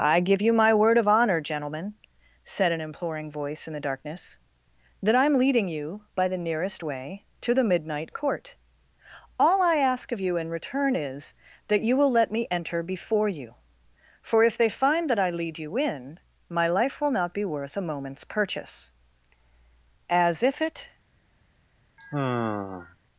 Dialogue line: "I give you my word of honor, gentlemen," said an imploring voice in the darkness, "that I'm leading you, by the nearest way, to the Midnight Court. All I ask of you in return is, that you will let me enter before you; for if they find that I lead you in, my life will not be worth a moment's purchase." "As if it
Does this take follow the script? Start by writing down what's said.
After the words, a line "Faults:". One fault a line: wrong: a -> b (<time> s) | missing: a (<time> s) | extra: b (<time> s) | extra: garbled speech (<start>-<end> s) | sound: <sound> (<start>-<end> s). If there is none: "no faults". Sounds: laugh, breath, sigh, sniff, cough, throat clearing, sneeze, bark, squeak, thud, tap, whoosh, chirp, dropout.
"I give you my word of honor, gentlemen," said an imploring voice in the darkness, "that I'm leading you, by the nearest way, to the Midnight Court. All I ask of you in return is, that you will let me enter before you; for if they find that I lead you in, my life will not be worth a moment's purchase." "As if it
Faults:
sound: sigh (22.0-23.0 s)